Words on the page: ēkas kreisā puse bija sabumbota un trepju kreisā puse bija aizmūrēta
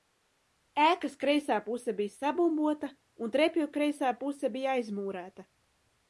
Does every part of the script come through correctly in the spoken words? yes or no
yes